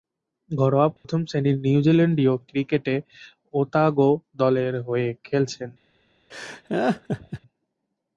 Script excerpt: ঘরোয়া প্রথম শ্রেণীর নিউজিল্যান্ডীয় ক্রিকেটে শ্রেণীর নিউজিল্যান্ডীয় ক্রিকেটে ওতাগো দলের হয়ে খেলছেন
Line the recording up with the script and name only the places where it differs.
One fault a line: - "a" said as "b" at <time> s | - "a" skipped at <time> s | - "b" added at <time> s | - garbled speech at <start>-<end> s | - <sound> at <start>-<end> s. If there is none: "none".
- dropout at 1.0-1.0 s
- "শ্রেণীর নিউজিল্যান্ডীয় ক্রিকেটে" skipped at 3.0 s
- laugh at 6.3-7.4 s